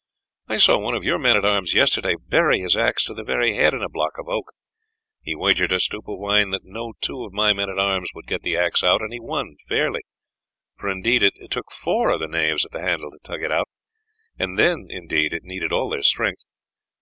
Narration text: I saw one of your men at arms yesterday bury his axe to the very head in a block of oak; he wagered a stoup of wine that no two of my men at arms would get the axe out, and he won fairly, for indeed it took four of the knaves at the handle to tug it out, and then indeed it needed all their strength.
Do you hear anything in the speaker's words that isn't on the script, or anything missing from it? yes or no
no